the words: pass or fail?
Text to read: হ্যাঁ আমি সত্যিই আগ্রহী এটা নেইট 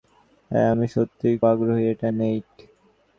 pass